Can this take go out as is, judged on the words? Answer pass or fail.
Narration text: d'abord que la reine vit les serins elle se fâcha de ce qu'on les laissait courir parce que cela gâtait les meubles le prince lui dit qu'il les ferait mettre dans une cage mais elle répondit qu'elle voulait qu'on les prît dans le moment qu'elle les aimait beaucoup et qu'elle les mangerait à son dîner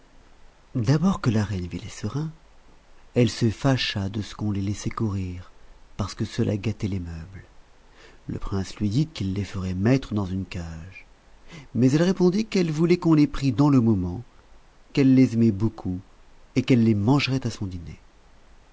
pass